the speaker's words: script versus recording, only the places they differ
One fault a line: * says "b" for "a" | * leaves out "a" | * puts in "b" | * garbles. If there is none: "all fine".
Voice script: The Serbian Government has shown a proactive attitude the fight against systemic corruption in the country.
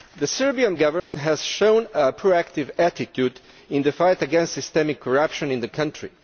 * puts in "in"